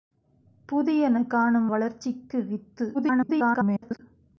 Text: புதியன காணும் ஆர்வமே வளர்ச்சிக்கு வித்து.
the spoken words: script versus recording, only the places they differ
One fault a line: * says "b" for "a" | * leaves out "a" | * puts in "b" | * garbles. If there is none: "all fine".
* leaves out "ஆர்வமே"
* garbles